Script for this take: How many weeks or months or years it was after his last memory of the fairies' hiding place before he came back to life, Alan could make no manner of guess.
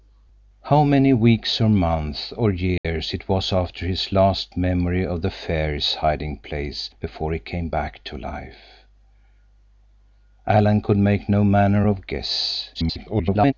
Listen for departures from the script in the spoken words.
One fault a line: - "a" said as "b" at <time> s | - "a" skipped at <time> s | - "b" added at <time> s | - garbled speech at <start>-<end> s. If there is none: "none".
- garbled speech at 12.7-13.5 s